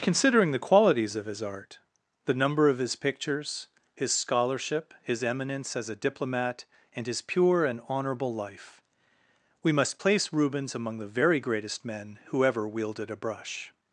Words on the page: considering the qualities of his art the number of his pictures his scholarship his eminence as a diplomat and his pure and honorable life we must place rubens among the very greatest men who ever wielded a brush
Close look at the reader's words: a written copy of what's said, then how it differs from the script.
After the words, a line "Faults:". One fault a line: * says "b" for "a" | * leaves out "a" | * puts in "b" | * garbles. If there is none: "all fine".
considering the qualities of his art the number of his pictures his scholarship his eminence as a diplomat and his pure and honorable life we must place rubens among the very greatest men who ever wielded a brush
Faults:
all fine